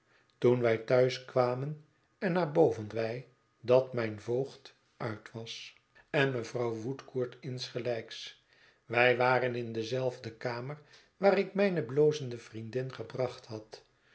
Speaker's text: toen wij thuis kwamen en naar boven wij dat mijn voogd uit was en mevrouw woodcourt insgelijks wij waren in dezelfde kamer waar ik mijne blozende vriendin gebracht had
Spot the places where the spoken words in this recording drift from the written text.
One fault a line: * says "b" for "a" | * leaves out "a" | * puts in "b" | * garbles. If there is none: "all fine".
all fine